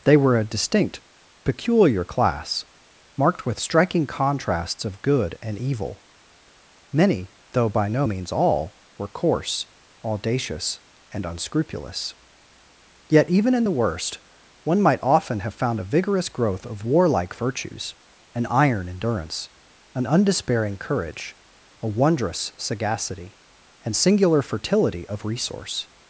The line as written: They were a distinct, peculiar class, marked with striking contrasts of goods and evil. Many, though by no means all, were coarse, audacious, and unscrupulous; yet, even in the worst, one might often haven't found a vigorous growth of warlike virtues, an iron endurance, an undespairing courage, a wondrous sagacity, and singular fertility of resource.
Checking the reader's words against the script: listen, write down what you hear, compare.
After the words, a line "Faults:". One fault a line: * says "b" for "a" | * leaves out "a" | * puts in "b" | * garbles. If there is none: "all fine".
They were a distinct, peculiar class, marked with striking contrasts of good and evil. Many, though by no means all, were coarse, audacious, and unscrupulous; yet, even in the worst, one might often have found a vigorous growth of warlike virtues, an iron endurance, an undespairing courage, a wondrous sagacity, and singular fertility of resource.
Faults:
* says "good" for "goods"
* says "have" for "haven't"